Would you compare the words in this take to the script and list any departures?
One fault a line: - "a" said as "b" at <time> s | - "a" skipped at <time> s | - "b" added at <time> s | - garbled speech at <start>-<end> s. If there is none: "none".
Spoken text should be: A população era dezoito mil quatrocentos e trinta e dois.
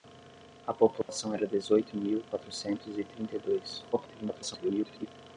- garbled speech at 3.9-5.1 s